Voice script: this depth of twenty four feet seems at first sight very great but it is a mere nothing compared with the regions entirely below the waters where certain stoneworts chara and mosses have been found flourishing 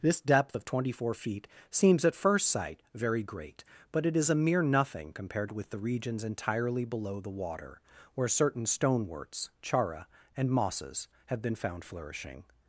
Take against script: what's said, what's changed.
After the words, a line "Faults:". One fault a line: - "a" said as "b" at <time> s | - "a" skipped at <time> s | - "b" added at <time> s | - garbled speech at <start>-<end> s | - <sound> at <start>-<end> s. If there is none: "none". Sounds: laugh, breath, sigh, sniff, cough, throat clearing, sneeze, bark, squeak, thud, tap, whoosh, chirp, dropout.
this depth of twenty four feet seems at first sight very great but it is a mere nothing compared with the regions entirely below the water where certain stoneworts chara and mosses have been found flourishing
Faults:
- "waters" said as "water" at 7.3 s